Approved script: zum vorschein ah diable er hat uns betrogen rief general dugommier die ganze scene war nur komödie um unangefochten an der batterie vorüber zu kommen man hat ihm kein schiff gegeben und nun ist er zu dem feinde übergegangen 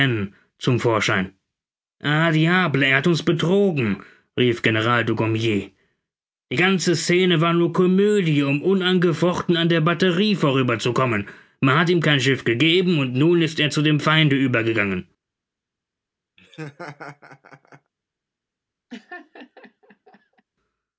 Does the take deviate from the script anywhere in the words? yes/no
no